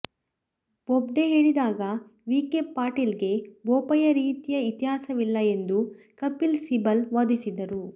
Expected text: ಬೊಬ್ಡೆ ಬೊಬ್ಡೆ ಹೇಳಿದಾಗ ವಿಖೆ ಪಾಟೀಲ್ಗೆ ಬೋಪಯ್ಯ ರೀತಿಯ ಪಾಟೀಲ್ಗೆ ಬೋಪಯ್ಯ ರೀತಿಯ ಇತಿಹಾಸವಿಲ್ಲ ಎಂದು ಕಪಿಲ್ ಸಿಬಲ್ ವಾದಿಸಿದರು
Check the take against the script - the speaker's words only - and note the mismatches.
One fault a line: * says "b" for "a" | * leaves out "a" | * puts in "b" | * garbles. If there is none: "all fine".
* leaves out "ಬೊಬ್ಡೆ"
* leaves out "ಪಾಟೀಲ್ಗೆ ಬೋಪಯ್ಯ ರೀತಿಯ"